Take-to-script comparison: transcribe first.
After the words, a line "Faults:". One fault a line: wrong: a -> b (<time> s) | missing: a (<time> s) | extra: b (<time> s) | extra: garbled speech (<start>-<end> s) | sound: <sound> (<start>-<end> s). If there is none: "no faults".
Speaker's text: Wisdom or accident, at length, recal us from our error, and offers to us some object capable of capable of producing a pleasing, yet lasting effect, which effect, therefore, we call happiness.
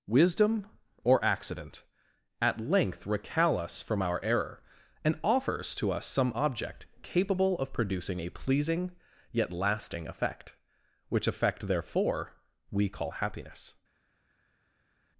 Wisdom or accident, at length, recal us from our error, and offers to us some object capable of producing a pleasing, yet lasting effect, which effect, therefore, we call happiness.
Faults:
missing: capable of (7.7 s)